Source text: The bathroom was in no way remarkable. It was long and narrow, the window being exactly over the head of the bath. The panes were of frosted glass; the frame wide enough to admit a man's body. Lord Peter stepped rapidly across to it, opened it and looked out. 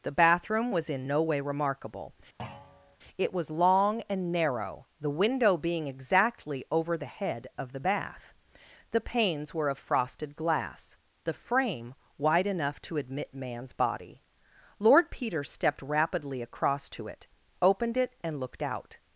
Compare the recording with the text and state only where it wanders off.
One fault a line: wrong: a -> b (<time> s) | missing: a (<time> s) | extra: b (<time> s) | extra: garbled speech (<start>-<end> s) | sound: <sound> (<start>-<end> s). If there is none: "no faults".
sound: thud (2.4-3.0 s)
missing: a (13.3 s)